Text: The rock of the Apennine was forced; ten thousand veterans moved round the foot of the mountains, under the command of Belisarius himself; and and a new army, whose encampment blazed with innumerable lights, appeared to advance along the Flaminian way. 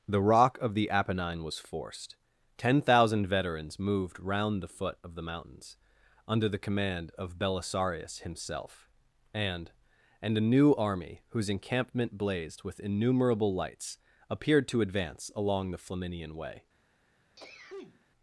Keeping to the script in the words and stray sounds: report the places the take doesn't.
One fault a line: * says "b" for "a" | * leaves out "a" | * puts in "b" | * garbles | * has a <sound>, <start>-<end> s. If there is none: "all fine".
* has a sneeze, 17.4-18.1 s